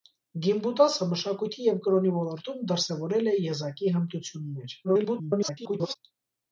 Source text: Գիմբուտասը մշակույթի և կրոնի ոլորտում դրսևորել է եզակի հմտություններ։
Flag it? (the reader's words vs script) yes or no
yes